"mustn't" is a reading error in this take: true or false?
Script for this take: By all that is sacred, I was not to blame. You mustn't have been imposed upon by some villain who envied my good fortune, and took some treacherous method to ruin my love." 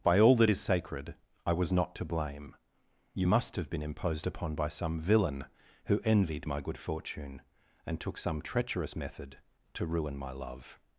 true